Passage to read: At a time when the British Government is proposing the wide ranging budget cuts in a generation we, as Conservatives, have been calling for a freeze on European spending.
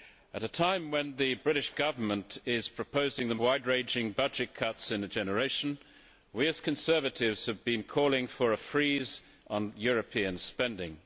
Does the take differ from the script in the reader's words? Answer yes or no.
no